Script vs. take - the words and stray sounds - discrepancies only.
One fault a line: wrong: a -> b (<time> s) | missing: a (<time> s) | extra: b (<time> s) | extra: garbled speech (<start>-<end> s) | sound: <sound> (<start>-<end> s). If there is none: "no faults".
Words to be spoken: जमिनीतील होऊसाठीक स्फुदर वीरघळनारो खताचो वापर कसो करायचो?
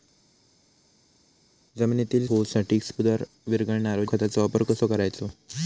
no faults